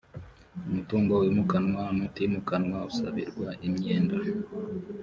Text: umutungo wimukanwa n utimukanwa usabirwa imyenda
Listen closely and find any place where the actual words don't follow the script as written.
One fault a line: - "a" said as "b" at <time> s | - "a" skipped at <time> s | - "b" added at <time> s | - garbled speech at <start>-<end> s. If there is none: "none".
none